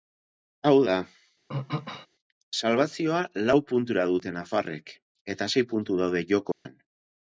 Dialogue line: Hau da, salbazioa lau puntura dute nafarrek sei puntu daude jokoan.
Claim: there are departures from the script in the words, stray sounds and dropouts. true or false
true